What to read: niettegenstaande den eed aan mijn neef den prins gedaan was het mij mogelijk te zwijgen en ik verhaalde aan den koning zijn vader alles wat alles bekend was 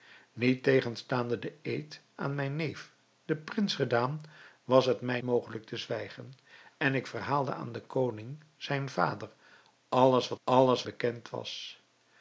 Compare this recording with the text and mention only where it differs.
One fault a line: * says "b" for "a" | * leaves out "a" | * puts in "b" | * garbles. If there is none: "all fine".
all fine